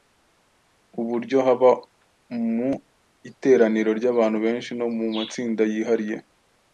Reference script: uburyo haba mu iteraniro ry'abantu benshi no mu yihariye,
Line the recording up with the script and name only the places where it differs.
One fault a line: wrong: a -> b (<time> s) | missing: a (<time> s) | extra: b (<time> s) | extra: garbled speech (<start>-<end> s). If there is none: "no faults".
extra: matsinda (5.2 s)